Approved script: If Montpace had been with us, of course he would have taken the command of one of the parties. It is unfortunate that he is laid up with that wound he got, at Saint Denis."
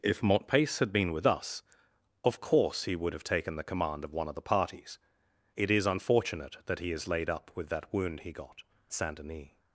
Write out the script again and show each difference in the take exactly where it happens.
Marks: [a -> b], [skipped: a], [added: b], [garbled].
If Montpace had been with us, of course he would have taken the command of one of the parties. It is unfortunate that he is laid up with that wound he got, [skipped: at] Saint Denis."